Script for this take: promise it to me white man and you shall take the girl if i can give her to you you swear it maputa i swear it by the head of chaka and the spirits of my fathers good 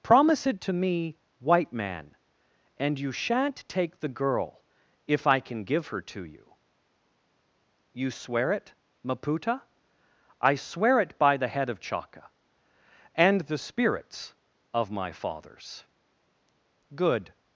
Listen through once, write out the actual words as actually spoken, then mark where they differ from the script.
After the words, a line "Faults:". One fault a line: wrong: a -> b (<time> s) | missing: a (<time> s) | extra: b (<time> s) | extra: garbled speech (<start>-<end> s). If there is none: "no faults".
promise it to me white man and you shan't take the girl if i can give her to you you swear it maputa i swear it by the head of chaka and the spirits of my fathers good
Faults:
wrong: shall -> shan't (3.1 s)